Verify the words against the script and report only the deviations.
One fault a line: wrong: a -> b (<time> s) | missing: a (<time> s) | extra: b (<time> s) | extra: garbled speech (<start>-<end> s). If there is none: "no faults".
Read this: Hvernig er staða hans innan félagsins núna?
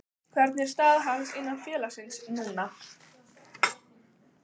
no faults